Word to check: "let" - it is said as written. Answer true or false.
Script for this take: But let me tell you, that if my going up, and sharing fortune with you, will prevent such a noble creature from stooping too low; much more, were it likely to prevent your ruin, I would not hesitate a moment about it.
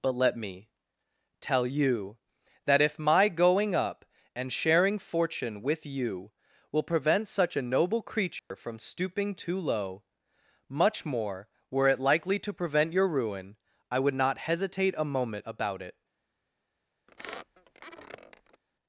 true